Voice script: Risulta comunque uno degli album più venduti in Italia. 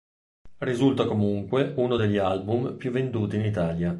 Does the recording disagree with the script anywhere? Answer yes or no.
no